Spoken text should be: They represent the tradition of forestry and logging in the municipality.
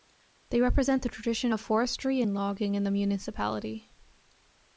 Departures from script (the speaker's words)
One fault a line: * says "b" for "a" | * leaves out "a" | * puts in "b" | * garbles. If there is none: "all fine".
all fine